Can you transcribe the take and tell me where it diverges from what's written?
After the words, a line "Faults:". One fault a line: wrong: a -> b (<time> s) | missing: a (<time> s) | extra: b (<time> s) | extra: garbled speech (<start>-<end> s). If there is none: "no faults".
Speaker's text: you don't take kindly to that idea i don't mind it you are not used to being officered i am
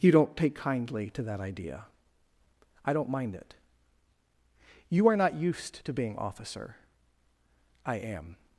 you don't take kindly to that idea i don't mind it you are not used to being officer i am
Faults:
wrong: officered -> officer (6.2 s)